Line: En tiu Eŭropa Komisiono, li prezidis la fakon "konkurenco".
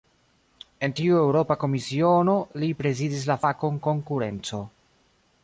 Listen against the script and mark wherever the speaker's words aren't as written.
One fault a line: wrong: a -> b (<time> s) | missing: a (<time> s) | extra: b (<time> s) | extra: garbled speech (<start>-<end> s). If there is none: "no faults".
no faults